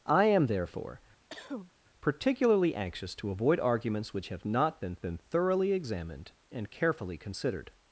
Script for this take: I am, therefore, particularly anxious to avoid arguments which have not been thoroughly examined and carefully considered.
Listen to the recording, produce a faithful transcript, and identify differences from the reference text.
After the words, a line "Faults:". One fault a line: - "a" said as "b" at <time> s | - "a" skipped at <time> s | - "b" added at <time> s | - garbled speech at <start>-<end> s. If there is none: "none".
I am, therefore, particularly anxious to avoid arguments which have not been been thoroughly examined and carefully considered.
Faults:
- "been" added at 5.0 s